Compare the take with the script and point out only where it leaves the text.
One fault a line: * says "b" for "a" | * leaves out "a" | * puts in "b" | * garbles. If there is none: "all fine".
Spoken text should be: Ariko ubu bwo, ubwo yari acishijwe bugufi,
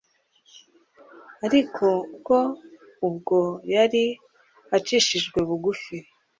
* leaves out "ubu"